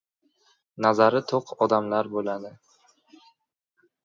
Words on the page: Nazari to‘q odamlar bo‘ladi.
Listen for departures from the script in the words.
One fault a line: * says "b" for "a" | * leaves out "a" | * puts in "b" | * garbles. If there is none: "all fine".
all fine